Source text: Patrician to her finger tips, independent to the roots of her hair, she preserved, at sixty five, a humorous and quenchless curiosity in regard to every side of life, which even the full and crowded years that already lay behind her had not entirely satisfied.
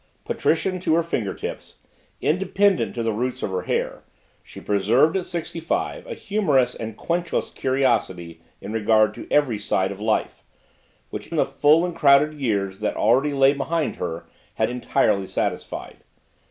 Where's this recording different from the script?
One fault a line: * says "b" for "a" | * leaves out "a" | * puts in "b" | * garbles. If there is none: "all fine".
* leaves out "even"
* leaves out "not"